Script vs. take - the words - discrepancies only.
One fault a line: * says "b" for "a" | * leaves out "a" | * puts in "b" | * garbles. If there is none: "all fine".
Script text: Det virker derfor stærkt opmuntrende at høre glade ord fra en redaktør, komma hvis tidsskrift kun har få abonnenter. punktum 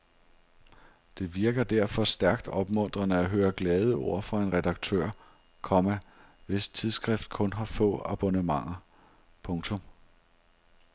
all fine